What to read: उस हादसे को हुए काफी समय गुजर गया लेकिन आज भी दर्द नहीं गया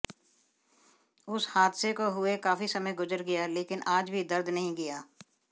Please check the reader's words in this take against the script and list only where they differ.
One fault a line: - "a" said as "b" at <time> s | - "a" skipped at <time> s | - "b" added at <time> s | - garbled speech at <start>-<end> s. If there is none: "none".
none